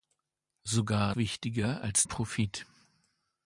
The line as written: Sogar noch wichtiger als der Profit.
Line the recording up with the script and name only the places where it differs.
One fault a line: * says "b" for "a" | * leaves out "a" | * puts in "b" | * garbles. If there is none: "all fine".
* leaves out "noch"
* leaves out "der"